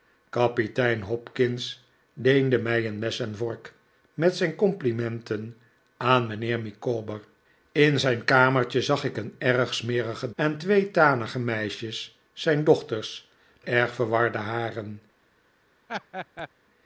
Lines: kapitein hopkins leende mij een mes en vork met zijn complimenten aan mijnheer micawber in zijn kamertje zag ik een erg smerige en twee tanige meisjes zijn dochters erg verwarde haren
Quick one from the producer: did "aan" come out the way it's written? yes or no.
yes